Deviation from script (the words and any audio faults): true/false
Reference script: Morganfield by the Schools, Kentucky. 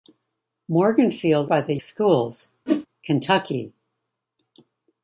true